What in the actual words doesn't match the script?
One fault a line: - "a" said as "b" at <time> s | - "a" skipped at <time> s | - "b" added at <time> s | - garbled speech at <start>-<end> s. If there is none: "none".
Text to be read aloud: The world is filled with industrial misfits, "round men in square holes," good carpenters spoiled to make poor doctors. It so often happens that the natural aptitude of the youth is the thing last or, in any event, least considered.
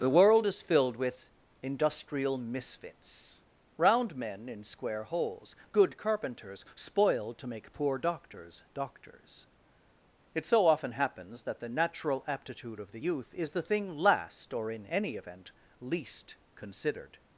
- "doctors" added at 8.7 s